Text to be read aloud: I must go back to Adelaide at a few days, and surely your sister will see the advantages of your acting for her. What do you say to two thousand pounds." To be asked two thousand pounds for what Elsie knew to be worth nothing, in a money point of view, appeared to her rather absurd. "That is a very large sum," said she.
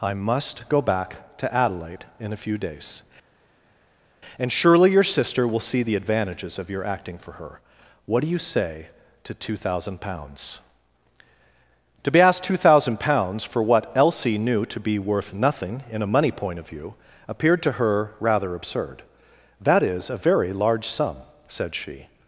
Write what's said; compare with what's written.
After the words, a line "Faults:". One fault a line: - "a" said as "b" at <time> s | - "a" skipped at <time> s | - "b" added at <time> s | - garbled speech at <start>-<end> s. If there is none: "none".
I must go back to Adelaide in a few days, and surely your sister will see the advantages of your acting for her. What do you say to two thousand pounds." To be asked two thousand pounds for what Elsie knew to be worth nothing, in a money point of view, appeared to her rather absurd. "That is a very large sum," said she.
Faults:
- "at" said as "in" at 2.2 s